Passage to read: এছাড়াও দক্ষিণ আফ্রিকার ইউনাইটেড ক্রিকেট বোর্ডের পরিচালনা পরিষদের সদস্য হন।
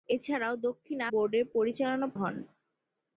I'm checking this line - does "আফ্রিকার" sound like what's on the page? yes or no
no